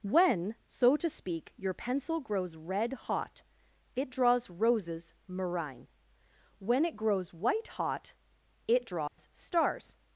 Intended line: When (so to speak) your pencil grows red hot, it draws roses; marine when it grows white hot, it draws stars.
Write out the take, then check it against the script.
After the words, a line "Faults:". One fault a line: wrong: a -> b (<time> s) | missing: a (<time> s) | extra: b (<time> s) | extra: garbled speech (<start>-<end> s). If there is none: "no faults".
When (so to speak) your pencil grows red hot, it draws roses; marine when it grows white hot, it draws stars.
Faults:
no faults